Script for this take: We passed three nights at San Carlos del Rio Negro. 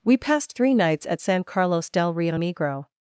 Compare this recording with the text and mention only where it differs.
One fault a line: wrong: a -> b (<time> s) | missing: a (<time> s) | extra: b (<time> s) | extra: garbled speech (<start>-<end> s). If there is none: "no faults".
no faults